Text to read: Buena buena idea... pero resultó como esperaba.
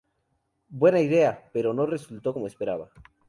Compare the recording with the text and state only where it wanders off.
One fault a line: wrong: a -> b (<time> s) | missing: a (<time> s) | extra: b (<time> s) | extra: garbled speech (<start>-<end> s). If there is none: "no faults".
missing: buena (1.0 s)
extra: no (1.8 s)